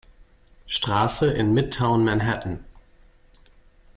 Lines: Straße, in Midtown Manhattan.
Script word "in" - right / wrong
right